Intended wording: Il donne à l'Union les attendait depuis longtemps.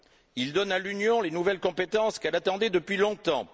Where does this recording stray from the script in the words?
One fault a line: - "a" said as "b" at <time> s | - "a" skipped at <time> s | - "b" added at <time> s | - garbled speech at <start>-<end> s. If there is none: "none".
- "nouvelles compétences qu'elle" added at 1.3 s